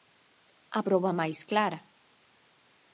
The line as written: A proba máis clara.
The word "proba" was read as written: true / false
true